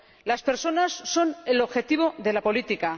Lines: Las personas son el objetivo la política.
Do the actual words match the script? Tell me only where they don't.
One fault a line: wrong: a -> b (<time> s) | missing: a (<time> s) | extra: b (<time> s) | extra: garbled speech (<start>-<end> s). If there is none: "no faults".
extra: de (2.2 s)